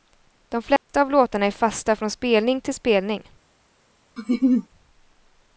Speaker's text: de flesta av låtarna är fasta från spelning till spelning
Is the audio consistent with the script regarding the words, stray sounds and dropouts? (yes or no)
no